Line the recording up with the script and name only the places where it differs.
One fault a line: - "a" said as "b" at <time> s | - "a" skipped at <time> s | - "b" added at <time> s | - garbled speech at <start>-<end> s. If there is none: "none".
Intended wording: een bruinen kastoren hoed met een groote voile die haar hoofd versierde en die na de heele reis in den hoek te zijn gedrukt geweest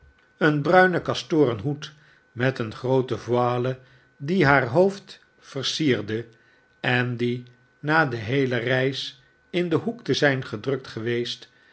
none